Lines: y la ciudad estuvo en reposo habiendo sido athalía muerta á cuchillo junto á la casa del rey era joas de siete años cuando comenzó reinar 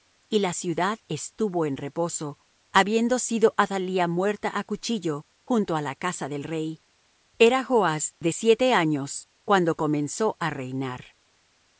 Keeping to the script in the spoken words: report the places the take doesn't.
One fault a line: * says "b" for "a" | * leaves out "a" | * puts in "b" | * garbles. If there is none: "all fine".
* puts in "á"